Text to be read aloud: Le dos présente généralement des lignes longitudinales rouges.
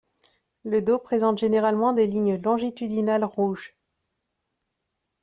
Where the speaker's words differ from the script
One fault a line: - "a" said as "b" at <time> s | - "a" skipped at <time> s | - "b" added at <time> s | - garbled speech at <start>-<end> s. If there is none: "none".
none